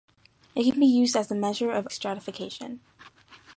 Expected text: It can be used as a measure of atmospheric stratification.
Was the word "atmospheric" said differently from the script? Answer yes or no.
yes